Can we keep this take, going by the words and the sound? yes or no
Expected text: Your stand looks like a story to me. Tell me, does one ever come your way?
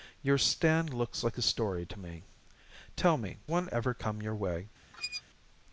no